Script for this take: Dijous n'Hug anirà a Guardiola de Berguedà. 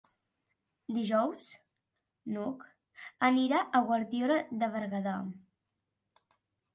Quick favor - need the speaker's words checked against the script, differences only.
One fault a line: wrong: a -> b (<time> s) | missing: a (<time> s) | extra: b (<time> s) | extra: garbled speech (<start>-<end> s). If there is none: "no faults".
no faults